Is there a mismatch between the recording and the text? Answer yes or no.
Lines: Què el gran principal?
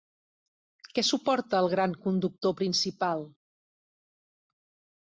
yes